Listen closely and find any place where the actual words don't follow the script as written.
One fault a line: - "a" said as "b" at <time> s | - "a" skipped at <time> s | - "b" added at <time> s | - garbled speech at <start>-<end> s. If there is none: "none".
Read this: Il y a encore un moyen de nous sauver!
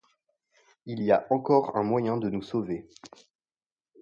none